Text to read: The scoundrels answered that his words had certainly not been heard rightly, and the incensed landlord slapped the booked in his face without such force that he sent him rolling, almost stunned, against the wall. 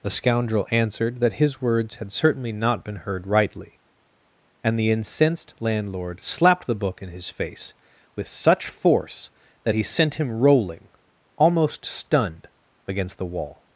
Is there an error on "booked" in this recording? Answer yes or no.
yes